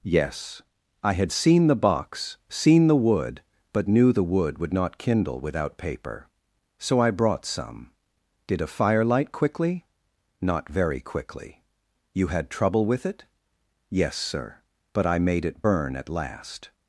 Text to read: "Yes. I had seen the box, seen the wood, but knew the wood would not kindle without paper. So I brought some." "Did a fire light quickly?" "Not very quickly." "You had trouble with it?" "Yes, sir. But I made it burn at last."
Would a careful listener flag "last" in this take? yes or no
no